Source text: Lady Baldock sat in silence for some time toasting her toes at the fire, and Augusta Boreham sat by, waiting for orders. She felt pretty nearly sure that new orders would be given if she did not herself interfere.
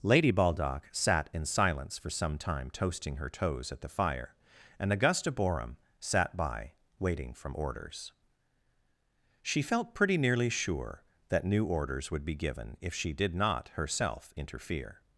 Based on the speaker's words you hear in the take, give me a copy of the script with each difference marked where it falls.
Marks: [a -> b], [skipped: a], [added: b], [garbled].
Lady Baldock sat in silence for some time toasting her toes at the fire, and Augusta Boreham sat by, waiting [for -> from] orders. She felt pretty nearly sure that new orders would be given if she did not herself interfere.